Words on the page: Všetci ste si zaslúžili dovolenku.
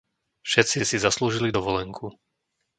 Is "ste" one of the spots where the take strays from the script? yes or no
yes